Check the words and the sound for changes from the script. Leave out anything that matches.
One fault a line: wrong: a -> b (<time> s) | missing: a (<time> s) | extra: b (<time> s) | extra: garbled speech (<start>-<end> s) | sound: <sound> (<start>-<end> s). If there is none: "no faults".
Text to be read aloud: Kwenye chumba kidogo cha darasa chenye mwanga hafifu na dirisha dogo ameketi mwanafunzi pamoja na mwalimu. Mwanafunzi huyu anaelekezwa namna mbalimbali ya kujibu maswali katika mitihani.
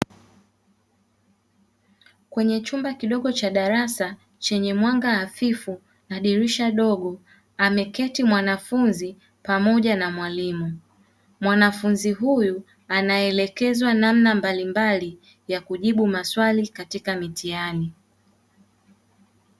no faults